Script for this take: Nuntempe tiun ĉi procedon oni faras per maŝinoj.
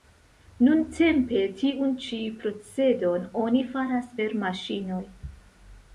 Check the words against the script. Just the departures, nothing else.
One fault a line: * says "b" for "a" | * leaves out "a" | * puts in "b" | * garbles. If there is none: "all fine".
all fine